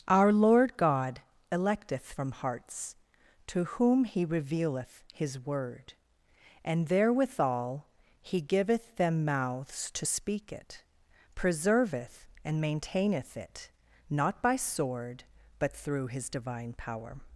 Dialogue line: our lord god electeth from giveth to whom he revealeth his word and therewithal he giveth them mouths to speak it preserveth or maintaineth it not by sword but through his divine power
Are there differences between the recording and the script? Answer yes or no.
yes